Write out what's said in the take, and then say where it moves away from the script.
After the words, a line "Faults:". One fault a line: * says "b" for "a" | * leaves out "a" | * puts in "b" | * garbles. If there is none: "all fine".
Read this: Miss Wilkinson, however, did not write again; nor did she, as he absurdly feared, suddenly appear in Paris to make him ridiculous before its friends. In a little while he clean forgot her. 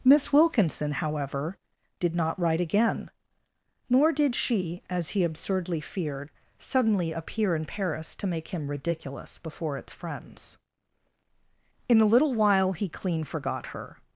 Miss Wilkinson, however, did not write again; nor did she, as he absurdly feared, suddenly appear in Paris to make him ridiculous before its friends. In a little while he clean forgot her.
Faults:
all fine